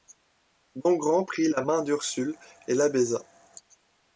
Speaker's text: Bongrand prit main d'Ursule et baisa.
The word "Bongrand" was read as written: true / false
true